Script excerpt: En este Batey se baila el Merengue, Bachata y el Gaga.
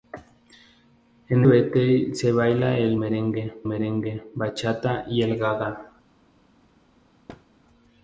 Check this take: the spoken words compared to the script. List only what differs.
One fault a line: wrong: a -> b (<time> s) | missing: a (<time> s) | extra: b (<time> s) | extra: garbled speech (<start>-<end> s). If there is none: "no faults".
missing: este (1.4 s)
extra: Merengue (3.6 s)